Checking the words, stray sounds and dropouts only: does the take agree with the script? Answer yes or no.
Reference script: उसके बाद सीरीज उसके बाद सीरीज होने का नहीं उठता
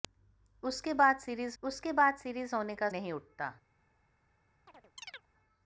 no